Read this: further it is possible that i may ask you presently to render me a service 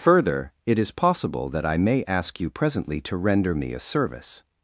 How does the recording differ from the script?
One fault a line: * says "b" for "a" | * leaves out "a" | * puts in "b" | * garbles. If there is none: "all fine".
all fine